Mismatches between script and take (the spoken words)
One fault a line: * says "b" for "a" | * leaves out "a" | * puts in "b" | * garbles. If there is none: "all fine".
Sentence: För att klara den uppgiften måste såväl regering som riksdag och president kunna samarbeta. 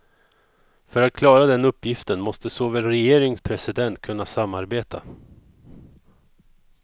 * leaves out "som riksdag"